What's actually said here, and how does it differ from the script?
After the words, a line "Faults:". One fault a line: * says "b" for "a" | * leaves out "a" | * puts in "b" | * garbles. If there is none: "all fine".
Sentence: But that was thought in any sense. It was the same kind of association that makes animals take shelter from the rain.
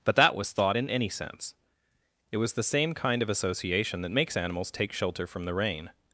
But that was thought in any sense. It was the same kind of association that makes animals take shelter from the rain.
Faults:
all fine